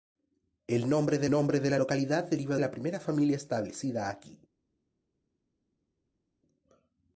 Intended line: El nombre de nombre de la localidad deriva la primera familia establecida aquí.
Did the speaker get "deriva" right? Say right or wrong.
right